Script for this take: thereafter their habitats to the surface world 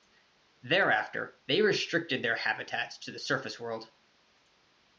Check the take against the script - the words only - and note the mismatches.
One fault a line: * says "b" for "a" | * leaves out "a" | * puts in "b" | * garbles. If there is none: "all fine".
* puts in "they restricted"